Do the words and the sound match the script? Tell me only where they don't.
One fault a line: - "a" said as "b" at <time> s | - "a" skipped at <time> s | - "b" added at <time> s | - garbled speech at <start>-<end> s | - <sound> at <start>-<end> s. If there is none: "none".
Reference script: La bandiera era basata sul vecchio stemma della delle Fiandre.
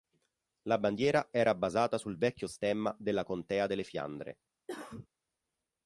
- "contea" added at 3.2 s
- cough at 4.7-5.1 s